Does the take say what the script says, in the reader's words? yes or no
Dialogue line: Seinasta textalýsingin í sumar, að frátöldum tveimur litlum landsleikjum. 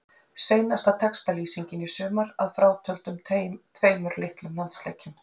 yes